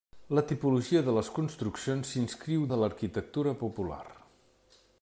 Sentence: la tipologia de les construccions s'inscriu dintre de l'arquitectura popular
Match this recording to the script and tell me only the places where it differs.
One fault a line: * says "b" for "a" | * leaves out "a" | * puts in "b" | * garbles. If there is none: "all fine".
* leaves out "dintre"